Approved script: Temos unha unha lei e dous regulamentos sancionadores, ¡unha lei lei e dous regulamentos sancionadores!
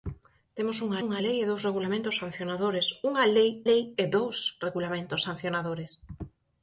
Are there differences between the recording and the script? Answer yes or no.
no